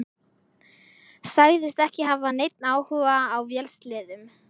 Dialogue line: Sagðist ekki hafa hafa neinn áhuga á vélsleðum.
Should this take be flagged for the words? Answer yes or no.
yes